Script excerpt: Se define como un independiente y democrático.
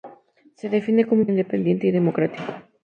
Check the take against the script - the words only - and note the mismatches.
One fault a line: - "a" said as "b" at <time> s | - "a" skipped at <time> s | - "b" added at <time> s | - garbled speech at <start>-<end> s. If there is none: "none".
none